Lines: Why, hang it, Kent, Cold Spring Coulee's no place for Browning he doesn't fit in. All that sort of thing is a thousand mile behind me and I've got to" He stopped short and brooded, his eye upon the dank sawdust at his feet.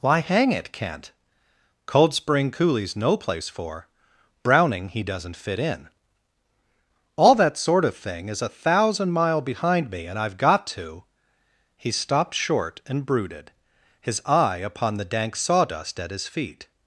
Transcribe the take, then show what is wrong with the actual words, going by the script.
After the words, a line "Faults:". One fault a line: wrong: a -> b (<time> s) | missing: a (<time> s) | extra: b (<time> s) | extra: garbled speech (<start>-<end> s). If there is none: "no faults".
Why, hang it, Kent, Cold Spring Coulee's no place for Browning he doesn't fit in. All that sort of thing is a thousand mile behind me and I've got to" He stopped short and brooded, his eye upon the dank sawdust at his feet.
Faults:
no faults